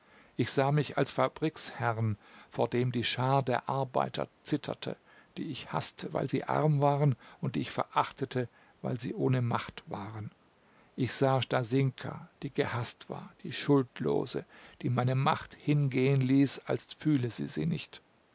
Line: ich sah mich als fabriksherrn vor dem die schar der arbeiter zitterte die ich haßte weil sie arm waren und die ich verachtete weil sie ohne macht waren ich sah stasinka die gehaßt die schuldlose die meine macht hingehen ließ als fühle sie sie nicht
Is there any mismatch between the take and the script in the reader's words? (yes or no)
yes